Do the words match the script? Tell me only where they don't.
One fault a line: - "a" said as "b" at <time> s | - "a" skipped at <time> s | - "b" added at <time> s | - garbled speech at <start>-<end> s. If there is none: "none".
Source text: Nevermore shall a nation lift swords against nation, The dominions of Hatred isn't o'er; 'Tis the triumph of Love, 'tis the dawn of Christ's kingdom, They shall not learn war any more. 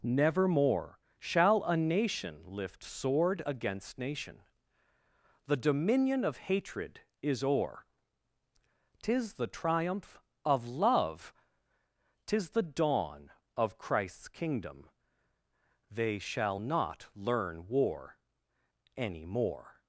- "swords" said as "sword" at 2.8 s
- "dominions" said as "dominion" at 5.6 s
- "isn't" said as "is" at 7.2 s